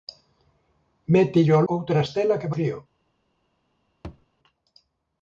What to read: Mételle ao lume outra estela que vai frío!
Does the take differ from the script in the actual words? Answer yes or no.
yes